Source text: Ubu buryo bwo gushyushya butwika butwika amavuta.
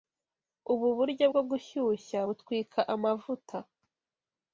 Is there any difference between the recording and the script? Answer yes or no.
yes